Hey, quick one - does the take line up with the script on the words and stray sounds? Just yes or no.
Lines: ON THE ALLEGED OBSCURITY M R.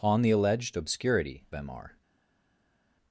yes